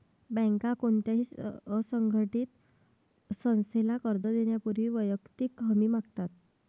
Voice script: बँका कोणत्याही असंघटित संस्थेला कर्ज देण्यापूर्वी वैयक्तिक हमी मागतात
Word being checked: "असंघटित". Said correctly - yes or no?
yes